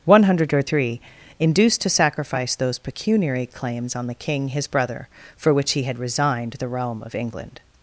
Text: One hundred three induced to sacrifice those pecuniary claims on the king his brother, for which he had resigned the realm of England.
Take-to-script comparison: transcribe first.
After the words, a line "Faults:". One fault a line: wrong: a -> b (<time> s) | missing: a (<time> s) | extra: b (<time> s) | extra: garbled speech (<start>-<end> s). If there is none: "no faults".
One hundred three induced to sacrifice those pecuniary claims on the king his brother, for which he had resigned the realm of England.
Faults:
no faults